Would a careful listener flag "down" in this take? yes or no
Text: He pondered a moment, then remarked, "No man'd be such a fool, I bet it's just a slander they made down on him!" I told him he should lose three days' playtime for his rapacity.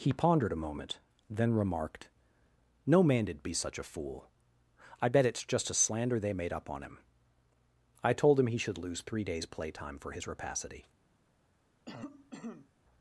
yes